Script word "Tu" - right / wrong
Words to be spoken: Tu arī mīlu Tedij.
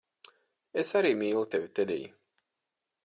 wrong